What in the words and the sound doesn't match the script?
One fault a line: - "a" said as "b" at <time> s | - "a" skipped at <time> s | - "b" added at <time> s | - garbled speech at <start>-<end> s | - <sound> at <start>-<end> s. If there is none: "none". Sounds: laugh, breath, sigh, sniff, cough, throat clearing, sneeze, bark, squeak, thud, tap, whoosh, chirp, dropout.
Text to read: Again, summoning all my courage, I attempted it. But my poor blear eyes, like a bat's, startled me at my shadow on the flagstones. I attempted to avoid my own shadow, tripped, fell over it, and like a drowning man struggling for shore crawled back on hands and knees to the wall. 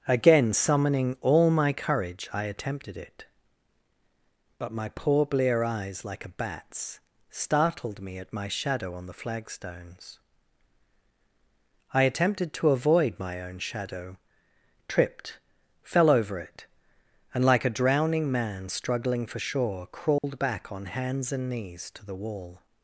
- dropout at 20.2-20.2 s